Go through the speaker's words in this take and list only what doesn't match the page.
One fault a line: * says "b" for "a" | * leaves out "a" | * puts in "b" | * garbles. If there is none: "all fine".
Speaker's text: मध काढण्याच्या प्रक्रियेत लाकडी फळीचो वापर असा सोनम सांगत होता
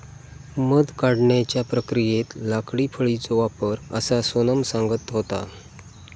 all fine